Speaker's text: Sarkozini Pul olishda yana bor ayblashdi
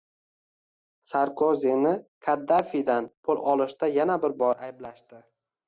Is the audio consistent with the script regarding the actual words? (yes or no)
no